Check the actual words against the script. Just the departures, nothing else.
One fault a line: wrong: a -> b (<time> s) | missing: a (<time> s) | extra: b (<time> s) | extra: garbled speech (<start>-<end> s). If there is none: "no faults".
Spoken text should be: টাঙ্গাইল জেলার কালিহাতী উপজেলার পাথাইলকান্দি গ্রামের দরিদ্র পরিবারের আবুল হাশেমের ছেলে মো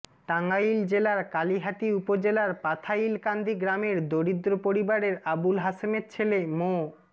no faults